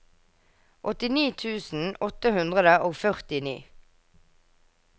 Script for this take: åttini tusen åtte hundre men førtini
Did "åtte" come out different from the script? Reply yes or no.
no